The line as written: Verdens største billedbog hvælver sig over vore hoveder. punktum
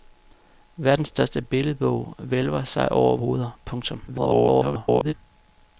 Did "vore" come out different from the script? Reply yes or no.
yes